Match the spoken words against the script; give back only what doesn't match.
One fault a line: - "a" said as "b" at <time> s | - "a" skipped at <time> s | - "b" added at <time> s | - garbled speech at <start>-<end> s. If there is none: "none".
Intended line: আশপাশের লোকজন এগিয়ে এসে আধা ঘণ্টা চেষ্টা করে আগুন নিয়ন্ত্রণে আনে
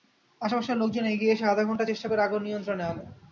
none